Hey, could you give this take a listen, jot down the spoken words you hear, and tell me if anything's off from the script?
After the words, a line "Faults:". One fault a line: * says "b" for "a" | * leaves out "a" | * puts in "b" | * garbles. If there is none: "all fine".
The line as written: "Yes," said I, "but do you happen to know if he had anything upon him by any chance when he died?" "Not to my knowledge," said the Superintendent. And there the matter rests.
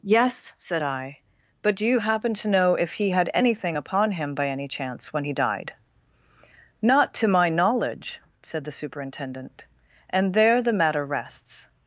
"Yes," said I, "but do you happen to know if he had anything upon him by any chance when he died?" "Not to my knowledge," said the Superintendent. And there the matter rests.
Faults:
all fine